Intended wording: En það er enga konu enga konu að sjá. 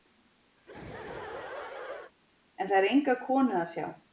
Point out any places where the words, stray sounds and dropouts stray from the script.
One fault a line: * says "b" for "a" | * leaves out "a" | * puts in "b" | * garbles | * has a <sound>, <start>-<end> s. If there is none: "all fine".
* has a laugh, 0.6-2.1 s
* leaves out "enga konu"